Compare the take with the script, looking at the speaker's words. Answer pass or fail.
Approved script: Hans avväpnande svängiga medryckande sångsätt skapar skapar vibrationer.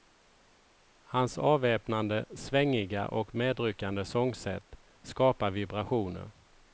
fail